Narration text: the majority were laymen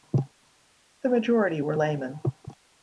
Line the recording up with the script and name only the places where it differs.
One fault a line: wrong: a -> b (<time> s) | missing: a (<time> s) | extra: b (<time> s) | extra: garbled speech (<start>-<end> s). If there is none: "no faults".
no faults